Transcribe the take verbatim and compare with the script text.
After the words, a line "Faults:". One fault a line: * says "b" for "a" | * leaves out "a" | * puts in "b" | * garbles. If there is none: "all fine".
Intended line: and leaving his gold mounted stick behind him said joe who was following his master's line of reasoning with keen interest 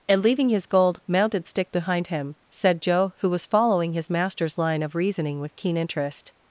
and leaving his gold mounted stick behind him said joe who was following his master's line of reasoning with keen interest
Faults:
all fine